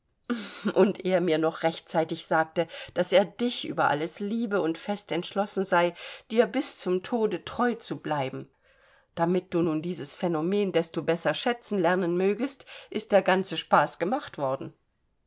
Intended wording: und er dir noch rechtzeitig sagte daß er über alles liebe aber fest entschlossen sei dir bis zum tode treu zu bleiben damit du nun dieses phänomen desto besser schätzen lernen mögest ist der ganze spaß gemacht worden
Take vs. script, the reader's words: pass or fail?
fail